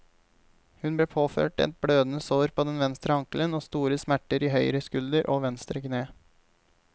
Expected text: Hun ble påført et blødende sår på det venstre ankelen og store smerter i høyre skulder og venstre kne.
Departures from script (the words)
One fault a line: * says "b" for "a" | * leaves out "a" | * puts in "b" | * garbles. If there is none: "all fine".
* says "den" for "det"